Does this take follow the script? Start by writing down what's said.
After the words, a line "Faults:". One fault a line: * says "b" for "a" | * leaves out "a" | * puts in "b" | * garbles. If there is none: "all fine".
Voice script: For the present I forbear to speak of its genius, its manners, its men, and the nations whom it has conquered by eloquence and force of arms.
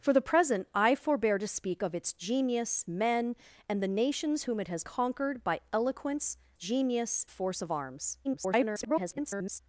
For the present I forbear to speak of its genius, men, and the nations whom it has conquered by eloquence genius force of arms. [garbled]
Faults:
* leaves out "its manners its"
* says "genius" for "and"
* garbles